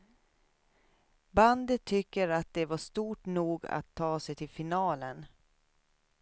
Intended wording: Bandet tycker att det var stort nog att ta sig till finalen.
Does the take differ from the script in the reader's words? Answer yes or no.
no